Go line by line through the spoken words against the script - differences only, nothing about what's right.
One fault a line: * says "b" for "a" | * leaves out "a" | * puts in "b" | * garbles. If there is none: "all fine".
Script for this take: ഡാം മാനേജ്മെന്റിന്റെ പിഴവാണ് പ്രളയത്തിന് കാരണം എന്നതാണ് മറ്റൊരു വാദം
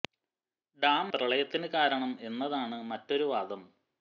* leaves out "മാനേജ്മെന്റിന്റെ പിഴവാണ്"